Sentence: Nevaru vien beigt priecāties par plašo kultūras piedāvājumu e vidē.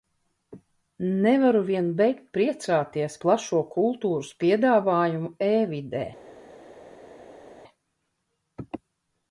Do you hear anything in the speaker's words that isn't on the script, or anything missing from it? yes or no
yes